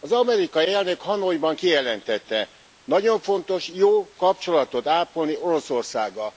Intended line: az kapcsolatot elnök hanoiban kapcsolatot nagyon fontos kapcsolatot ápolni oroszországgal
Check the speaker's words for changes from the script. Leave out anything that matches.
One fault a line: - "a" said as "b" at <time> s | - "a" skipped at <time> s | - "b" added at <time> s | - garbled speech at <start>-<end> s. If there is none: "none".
- "kapcsolatot" said as "amerikai" at 0.1 s
- "kapcsolatot" said as "kijelentette" at 1.5 s
- "jó" added at 3.7 s